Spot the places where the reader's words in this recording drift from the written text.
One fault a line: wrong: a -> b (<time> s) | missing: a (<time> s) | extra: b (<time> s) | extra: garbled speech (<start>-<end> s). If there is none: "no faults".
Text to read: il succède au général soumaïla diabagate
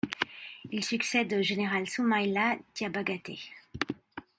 no faults